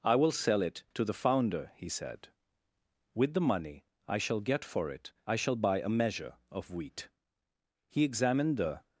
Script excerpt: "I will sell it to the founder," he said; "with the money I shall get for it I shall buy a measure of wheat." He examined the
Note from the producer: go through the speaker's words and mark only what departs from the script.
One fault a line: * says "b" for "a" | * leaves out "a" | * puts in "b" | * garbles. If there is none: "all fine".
all fine